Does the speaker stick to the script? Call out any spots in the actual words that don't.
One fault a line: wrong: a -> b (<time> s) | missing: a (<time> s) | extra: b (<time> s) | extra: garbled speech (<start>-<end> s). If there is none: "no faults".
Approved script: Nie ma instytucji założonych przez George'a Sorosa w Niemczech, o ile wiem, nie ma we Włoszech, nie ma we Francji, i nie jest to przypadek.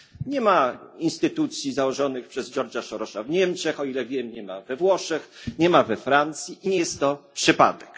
no faults